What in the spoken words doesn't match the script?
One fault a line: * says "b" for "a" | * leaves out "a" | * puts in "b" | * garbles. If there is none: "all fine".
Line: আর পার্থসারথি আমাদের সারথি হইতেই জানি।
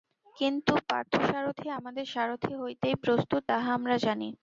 * says "কিন্তু" for "আর"
* puts in "প্রস্তুত তাহা আমরা"